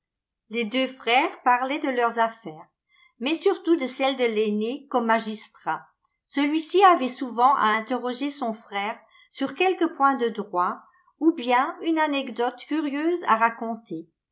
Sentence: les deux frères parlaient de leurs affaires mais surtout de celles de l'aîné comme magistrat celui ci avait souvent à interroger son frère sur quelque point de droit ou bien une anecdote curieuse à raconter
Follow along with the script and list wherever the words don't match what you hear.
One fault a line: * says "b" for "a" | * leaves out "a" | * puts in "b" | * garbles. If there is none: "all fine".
all fine